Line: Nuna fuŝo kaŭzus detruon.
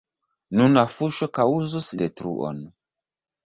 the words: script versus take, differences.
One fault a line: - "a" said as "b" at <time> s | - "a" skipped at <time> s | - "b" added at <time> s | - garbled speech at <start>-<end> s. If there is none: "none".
none